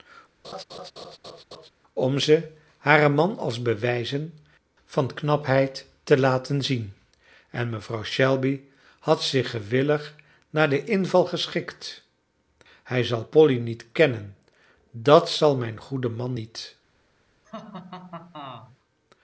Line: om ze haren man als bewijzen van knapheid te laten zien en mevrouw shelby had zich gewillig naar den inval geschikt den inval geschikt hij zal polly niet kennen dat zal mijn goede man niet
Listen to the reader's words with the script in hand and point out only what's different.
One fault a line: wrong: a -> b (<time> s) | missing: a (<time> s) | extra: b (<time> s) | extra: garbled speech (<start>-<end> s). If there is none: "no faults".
missing: den inval geschikt (12.0 s)